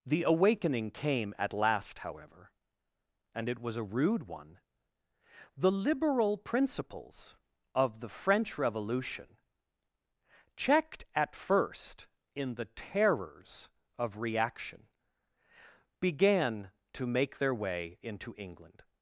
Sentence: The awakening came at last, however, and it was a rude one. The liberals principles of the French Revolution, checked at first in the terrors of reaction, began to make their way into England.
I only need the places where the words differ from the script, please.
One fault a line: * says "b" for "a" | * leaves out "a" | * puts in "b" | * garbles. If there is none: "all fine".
* says "liberal" for "liberals"